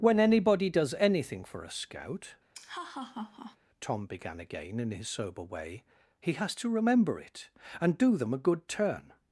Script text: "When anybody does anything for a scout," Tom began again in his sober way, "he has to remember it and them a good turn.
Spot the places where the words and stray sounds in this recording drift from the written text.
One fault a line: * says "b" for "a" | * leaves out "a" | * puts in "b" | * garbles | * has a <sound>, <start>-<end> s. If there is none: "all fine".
* has a laugh, 2.5-3.6 s
* puts in "do"